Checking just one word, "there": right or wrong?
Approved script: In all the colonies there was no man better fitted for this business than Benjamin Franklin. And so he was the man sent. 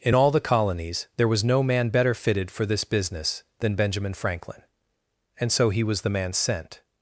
right